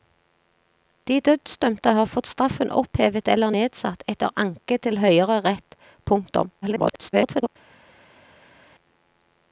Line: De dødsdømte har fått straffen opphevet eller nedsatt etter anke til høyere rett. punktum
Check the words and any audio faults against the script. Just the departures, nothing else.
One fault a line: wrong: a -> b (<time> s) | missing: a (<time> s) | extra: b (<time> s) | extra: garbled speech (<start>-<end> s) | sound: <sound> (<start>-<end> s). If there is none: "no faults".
extra: garbled speech (6.6-7.5 s)